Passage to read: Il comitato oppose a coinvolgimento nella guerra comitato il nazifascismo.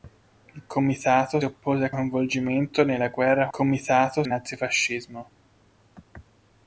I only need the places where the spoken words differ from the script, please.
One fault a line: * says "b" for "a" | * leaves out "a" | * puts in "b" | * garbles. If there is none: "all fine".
all fine